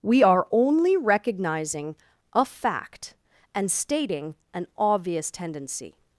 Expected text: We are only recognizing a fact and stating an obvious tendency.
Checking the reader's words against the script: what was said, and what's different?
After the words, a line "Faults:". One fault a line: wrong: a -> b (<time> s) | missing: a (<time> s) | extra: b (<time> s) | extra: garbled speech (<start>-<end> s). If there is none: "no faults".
We are only recognizing a fact and stating an obvious tendency.
Faults:
no faults